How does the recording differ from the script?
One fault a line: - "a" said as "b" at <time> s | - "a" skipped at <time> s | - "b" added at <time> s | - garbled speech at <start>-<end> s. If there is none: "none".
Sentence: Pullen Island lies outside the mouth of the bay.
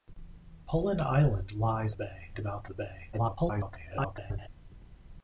- "outside" said as "bay" at 1.9 s
- "of" skipped at 2.7 s
- garbled speech at 3.1-4.5 s